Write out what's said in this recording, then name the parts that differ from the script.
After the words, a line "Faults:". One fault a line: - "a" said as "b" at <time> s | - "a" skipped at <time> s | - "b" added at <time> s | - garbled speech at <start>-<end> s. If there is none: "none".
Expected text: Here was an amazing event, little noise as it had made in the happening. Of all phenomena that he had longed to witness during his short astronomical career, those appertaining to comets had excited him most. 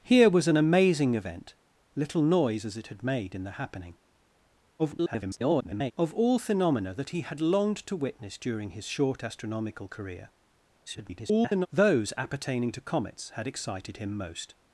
Here was an amazing event, little noise as it had made in the happening. [garbled] Of all phenomena that he had longed to witness during his short astronomical career, [garbled] those appertaining to comets had excited him most.
Faults:
- garbled speech at 4.8-5.9 s
- garbled speech at 10.9-11.7 s